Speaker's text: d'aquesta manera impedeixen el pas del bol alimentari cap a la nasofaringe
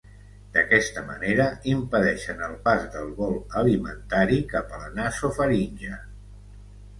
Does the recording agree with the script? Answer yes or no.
yes